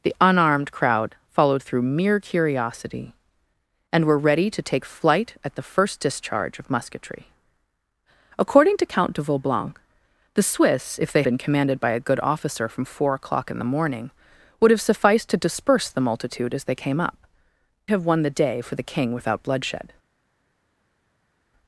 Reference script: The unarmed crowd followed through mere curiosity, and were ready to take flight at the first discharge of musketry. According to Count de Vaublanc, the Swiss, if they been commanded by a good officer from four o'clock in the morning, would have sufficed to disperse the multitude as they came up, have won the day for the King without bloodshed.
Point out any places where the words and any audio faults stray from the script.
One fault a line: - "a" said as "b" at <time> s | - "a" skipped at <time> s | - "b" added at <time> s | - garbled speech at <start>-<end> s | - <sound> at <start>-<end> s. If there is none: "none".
none